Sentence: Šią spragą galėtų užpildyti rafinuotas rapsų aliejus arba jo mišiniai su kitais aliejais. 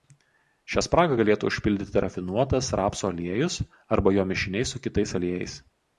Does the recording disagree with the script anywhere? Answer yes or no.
no